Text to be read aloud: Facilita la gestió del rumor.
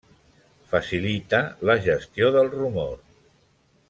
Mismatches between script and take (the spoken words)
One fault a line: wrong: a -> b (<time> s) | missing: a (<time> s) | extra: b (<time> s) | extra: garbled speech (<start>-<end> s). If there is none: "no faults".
no faults